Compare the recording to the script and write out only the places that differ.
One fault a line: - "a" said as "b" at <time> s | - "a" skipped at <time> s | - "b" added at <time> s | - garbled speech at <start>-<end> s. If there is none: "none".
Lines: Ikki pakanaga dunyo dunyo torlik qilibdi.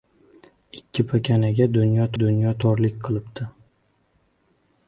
none